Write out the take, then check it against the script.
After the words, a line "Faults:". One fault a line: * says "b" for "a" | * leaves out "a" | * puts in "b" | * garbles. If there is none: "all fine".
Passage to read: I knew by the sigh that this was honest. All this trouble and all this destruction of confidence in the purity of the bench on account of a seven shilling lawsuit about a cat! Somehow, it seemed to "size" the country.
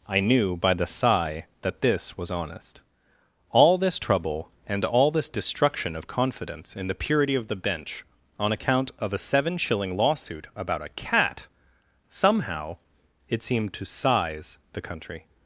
I knew by the sigh that this was honest. All this trouble and all this destruction of confidence in the purity of the bench on account of a seven shilling lawsuit about a cat! Somehow, it seemed to "size" the country.
Faults:
all fine